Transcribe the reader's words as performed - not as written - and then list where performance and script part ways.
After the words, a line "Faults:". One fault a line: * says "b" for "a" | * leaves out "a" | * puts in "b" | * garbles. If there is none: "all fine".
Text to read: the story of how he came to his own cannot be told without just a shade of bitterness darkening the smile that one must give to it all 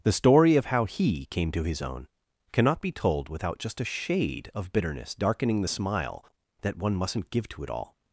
the story of how he came to his own cannot be told without just a shade of bitterness darkening the smile that one mustn't give to it all
Faults:
* says "mustn't" for "must"